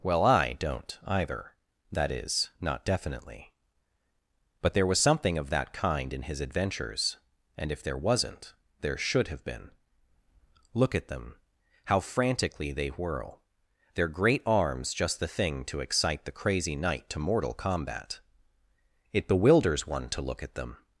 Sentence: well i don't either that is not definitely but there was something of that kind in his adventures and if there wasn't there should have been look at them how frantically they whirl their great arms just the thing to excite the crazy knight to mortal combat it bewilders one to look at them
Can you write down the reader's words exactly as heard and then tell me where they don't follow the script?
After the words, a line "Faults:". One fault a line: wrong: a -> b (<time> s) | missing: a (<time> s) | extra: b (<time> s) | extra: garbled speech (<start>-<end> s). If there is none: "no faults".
well i don't either that is not definitely but there was something of that kind in his adventures and if there wasn't there should have been look at them how frantically they whirl their great arms just the thing to excite the crazy knight to mortal combat it bewilders one to look at them
Faults:
no faults